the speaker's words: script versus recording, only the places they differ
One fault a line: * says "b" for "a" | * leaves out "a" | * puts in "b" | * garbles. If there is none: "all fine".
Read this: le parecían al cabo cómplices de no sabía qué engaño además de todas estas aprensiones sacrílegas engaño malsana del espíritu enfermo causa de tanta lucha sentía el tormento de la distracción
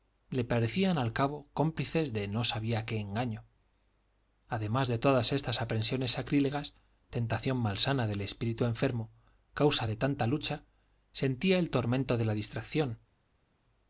* says "tentación" for "engaño"